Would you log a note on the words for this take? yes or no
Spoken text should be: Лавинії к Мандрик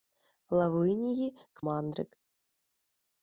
no